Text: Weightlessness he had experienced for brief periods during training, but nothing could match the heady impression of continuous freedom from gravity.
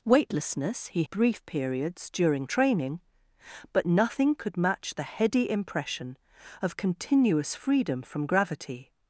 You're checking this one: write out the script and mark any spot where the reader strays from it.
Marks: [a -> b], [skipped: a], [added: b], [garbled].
Weightlessness he [skipped: had experienced for] brief periods during training, but nothing could match the heady impression of continuous freedom from gravity.